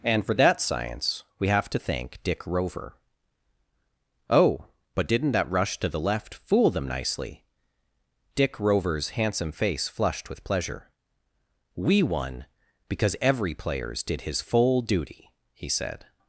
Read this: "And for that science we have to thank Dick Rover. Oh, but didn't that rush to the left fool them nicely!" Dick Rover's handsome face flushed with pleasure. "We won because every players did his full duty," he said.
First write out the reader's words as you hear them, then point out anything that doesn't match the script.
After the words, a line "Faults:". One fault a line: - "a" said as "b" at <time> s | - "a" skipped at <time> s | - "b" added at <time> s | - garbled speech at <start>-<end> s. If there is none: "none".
"And for that science we have to thank Dick Rover. Oh, but didn't that rush to the left fool them nicely!" Dick Rover's handsome face flushed with pleasure. "We won because every players did his full duty," he said.
Faults:
none